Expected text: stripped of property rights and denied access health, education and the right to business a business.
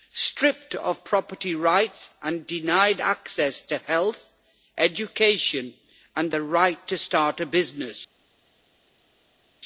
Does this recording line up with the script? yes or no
no